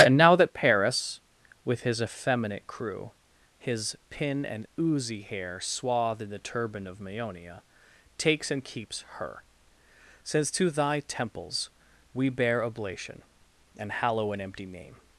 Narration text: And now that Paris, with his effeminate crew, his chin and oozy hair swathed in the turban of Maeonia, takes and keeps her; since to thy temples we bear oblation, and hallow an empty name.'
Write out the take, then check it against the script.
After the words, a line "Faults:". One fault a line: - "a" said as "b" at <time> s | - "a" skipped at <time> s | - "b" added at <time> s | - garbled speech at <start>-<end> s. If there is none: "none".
And now that Paris, with his effeminate crew, his pin and oozy hair swathed in the turban of Maeonia, takes and keeps her; since to thy temples we bear oblation, and hallow an empty name.'
Faults:
- "chin" said as "pin" at 4.1 s